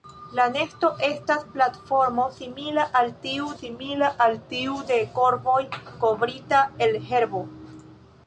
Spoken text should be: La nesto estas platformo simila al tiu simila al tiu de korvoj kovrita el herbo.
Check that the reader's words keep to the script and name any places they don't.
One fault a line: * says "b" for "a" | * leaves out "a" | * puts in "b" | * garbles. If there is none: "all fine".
all fine